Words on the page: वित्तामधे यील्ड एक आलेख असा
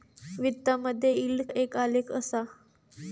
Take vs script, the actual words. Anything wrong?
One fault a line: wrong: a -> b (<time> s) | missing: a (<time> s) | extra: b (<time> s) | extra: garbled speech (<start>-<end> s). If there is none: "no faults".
no faults